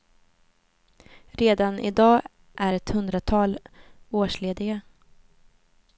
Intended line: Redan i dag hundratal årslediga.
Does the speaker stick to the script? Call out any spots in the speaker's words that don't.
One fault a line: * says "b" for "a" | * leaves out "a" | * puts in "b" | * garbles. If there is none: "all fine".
* puts in "är ett"